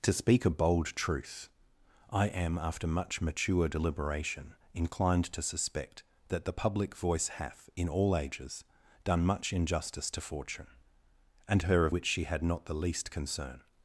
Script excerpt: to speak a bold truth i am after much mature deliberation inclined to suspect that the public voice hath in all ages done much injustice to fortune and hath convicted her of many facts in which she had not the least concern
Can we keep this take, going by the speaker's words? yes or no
no